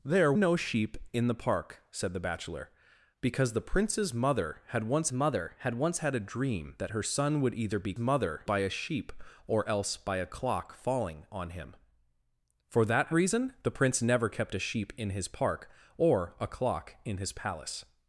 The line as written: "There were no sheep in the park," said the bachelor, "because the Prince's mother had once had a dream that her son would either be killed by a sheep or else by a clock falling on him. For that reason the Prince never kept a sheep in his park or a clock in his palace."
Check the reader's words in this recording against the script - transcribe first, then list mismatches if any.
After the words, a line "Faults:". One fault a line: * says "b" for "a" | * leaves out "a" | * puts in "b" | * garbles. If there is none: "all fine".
"There no sheep in the park," said the bachelor, "because the Prince's mother had once mother had once had a dream that her son would either be mother by a sheep or else by a clock falling on him. For that reason the Prince never kept a sheep in his park or a clock in his palace."
Faults:
* leaves out "were"
* puts in "mother"
* puts in "once had"
* says "mother" for "killed"